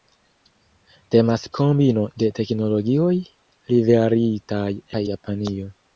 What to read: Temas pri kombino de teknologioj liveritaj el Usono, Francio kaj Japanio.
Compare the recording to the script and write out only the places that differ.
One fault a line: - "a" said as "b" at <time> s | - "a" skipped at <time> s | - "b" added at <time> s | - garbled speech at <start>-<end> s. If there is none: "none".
- "pri" skipped at 1.4 s
- "el Usono Francio" skipped at 4.7 s